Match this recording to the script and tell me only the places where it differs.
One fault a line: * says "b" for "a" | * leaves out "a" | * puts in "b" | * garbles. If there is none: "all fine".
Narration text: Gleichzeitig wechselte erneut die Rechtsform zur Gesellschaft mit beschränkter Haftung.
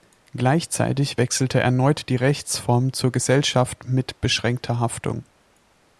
all fine